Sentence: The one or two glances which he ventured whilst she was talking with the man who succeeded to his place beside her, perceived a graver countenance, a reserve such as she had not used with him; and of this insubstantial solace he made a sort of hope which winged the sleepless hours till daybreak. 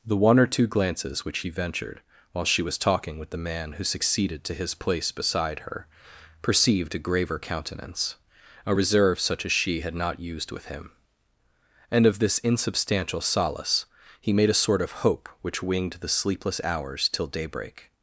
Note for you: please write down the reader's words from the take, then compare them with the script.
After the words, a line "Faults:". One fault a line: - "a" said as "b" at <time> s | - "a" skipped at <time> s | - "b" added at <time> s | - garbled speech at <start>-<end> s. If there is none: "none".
The one or two glances which he ventured while she was talking with the man who succeeded to his place beside her, perceived a graver countenance, a reserve such as she had not used with him; and of this insubstantial solace he made a sort of hope which winged the sleepless hours till daybreak.
Faults:
- "whilst" said as "while" at 2.3 s